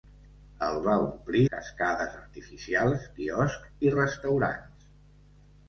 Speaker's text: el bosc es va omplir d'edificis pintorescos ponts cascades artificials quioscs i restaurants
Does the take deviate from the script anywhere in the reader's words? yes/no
yes